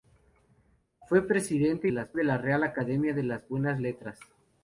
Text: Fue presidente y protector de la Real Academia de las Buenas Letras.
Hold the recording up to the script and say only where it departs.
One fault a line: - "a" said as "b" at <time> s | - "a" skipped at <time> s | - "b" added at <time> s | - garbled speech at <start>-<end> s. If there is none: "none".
- "protector" said as "las" at 1.9 s